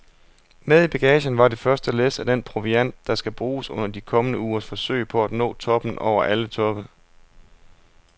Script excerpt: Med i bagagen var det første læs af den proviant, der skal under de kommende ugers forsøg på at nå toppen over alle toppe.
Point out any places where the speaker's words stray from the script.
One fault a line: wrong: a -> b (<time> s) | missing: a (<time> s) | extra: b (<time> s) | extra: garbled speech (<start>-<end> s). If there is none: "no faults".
extra: bruges (3.3 s)